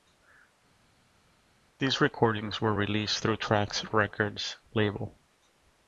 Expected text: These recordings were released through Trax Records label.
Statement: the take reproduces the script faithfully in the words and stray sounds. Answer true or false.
true